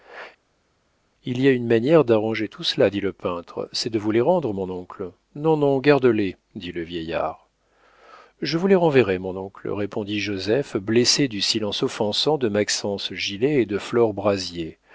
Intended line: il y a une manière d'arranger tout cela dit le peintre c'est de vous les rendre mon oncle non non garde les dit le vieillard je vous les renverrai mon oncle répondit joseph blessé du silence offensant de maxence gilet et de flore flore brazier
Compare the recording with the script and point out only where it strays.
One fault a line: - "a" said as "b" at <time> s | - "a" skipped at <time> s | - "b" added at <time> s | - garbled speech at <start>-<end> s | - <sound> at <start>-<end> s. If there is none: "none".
- "flore" skipped at 14.1 s